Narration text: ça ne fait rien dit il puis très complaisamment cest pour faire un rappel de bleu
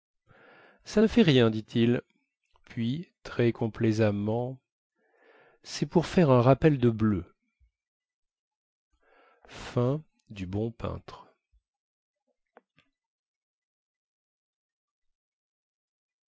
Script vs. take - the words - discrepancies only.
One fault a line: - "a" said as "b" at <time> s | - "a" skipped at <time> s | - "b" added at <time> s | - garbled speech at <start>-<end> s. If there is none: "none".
none